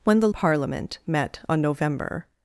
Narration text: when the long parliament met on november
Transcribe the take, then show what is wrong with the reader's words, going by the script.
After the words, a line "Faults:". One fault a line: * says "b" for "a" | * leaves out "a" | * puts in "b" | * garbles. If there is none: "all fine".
when the parliament met on november
Faults:
* leaves out "long"